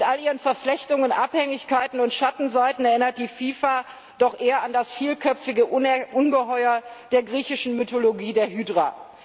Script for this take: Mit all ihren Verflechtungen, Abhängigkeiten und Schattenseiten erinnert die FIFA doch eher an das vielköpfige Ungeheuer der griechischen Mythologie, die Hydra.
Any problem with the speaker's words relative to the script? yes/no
no